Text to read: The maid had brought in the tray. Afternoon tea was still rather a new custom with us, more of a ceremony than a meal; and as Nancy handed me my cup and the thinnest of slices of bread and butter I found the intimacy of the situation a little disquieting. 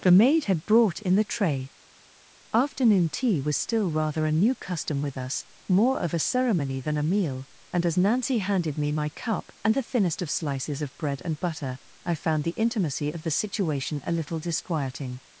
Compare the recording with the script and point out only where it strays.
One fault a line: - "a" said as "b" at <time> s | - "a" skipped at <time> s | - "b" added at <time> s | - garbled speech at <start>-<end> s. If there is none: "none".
none